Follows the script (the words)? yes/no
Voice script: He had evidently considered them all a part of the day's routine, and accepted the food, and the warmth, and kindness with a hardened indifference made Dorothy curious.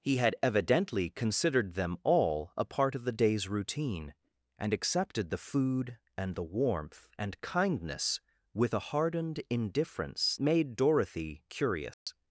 yes